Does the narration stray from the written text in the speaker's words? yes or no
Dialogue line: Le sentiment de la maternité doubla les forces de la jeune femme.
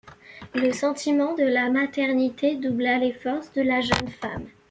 no